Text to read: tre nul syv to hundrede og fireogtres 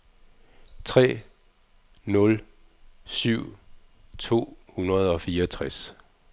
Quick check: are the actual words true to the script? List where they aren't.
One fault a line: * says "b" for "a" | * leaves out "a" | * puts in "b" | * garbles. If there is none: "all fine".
all fine